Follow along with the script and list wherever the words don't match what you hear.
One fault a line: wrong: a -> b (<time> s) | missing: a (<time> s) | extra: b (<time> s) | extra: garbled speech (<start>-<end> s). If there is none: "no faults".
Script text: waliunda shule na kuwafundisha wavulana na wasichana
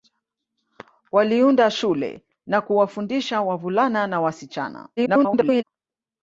extra: garbled speech (5.0-5.6 s)